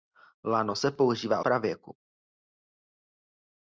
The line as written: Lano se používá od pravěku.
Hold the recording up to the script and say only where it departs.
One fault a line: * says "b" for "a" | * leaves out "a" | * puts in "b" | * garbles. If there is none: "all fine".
* leaves out "od"